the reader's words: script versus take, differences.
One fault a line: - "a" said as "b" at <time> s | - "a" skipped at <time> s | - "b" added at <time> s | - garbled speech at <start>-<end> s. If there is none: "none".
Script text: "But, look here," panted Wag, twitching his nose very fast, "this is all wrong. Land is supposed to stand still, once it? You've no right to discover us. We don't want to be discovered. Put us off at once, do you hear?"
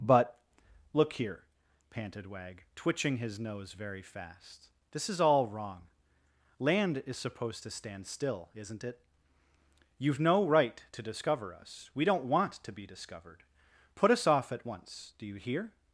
- "once" said as "isn't" at 8.5 s